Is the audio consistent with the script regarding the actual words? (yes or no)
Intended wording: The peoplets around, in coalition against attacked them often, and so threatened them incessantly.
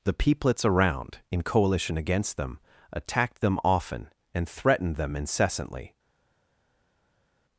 no